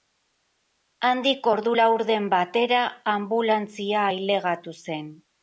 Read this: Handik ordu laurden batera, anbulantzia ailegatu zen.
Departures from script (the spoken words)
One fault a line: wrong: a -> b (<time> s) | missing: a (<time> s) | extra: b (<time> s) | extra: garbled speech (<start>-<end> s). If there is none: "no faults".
no faults